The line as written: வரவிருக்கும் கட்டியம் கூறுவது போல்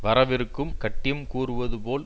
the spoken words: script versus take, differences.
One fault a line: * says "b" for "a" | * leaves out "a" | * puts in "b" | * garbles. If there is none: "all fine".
all fine